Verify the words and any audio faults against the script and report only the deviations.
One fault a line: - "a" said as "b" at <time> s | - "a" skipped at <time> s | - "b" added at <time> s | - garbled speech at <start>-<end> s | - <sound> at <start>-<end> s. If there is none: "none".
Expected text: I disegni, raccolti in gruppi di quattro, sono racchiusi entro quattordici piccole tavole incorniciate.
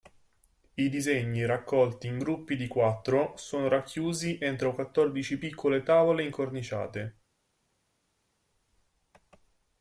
none